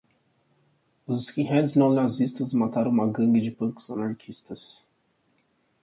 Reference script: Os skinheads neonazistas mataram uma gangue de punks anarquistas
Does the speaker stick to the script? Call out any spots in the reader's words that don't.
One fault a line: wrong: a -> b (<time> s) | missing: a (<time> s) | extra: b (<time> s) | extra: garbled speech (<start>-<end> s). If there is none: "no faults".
no faults